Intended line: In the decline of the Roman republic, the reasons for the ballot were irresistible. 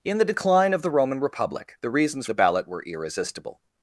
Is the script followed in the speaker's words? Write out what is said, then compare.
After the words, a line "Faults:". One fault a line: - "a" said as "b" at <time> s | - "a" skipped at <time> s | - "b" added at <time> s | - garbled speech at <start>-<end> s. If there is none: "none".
In the decline of the Roman republic, the reasons the ballot were irresistible.
Faults:
- "for" skipped at 2.2 s